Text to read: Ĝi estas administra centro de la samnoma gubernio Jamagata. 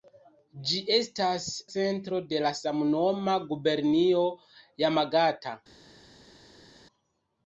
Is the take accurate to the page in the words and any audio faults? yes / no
no